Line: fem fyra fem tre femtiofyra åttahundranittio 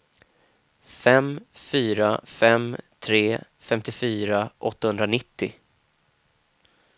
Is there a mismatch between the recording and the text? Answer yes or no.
no